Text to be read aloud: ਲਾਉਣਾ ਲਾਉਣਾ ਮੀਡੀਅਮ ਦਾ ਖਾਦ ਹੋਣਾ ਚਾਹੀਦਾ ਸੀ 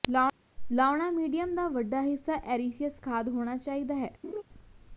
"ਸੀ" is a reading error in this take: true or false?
true